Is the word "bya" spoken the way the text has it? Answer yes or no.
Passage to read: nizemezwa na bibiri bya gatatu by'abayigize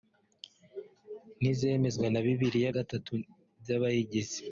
no